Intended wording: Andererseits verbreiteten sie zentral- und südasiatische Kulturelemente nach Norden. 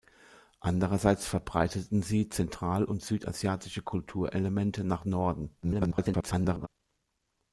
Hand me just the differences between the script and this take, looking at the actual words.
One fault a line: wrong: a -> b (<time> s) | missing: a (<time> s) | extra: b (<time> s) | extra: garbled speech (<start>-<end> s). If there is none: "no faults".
extra: garbled speech (5.6-6.7 s)